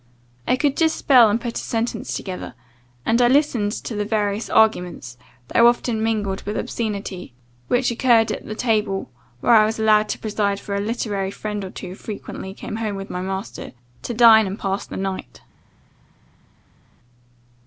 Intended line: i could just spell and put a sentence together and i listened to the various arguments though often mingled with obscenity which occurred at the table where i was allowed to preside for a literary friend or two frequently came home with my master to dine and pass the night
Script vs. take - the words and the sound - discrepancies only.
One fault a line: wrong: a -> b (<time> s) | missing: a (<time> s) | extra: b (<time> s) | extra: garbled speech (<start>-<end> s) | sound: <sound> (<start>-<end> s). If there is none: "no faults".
no faults